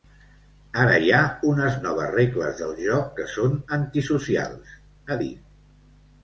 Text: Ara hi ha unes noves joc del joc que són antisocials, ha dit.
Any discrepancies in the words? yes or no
yes